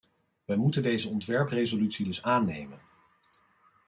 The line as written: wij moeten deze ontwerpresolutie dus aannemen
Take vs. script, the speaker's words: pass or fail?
pass